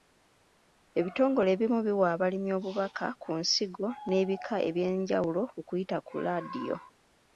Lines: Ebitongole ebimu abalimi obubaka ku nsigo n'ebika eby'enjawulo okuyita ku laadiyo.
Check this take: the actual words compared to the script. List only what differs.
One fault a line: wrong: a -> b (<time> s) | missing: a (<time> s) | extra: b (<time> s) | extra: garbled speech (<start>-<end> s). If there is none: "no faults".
extra: biwa (1.9 s)